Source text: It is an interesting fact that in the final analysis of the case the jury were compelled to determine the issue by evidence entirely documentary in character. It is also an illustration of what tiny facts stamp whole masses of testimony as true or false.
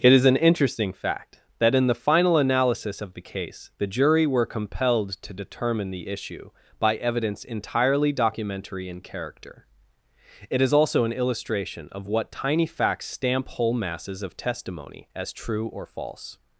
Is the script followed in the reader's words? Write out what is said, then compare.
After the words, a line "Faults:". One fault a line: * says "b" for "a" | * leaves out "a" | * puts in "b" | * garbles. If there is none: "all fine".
It is an interesting fact that in the final analysis of the case the jury were compelled to determine the issue by evidence entirely documentary in character. It is also an illustration of what tiny facts stamp whole masses of testimony as true or false.
Faults:
all fine